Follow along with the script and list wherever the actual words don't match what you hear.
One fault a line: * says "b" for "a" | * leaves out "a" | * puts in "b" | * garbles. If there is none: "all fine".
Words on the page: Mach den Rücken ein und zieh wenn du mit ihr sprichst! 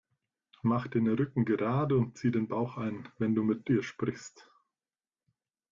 * says "gerade" for "ein"
* puts in "den Bauch ein"